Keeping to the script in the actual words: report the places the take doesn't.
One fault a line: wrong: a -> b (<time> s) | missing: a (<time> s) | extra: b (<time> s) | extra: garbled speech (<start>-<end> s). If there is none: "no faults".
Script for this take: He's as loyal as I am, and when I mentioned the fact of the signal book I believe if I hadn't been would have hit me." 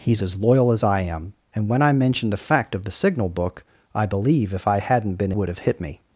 no faults